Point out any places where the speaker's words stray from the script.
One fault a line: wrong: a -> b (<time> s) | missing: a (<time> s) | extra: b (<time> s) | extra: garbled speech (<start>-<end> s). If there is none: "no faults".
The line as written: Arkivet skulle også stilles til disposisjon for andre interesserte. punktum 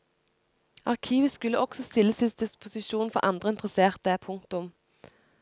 no faults